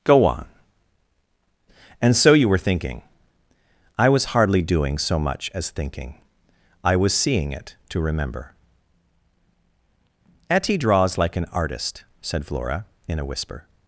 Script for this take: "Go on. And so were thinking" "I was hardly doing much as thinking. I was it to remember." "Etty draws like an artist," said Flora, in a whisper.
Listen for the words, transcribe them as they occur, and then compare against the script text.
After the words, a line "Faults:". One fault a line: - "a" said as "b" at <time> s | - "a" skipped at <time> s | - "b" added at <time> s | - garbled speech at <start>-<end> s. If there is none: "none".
"Go on. And so you were thinking" "I was hardly doing so much as thinking. I was seeing it to remember." "Etty draws like an artist," said Flora, in a whisper.
Faults:
- "you" added at 2.3 s
- "so" added at 5.0 s
- "seeing" added at 7.1 s